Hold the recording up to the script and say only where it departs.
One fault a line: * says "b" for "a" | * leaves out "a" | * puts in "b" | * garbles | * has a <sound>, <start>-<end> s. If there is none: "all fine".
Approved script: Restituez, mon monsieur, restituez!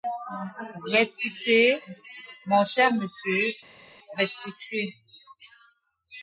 * puts in "cher"